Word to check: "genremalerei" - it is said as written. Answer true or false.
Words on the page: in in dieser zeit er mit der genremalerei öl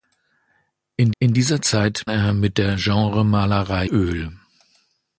true